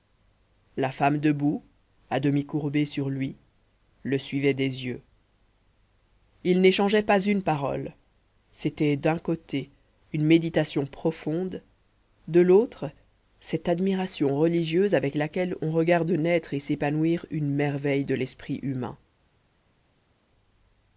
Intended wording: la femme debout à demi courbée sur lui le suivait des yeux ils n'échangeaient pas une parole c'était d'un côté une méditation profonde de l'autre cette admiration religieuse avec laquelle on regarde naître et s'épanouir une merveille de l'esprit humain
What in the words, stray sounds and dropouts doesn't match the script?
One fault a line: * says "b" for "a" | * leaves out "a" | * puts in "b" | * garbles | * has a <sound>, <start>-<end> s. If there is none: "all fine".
all fine